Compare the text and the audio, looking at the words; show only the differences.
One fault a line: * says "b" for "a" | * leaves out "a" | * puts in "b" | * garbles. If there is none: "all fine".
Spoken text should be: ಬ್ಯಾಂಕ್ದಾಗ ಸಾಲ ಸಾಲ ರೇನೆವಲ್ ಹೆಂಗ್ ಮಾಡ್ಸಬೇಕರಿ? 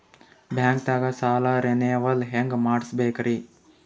* leaves out "ಸಾಲ"